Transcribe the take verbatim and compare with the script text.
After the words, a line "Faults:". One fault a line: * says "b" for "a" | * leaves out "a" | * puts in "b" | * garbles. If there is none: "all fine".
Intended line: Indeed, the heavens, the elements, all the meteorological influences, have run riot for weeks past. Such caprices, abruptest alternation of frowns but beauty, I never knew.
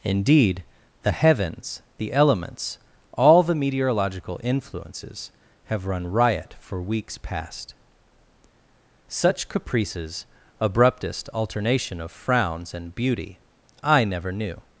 Indeed, the heavens, the elements, all the meteorological influences, have run riot for weeks past. Such caprices, abruptest alternation of frowns and beauty, I never knew.
Faults:
* says "and" for "but"